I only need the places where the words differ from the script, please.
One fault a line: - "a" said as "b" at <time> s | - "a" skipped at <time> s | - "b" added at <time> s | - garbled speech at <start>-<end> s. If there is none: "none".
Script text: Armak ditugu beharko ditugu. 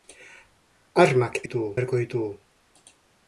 none